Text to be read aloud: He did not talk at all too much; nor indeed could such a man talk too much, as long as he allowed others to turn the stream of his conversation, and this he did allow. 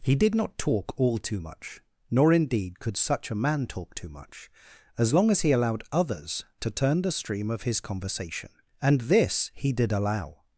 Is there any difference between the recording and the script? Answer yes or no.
yes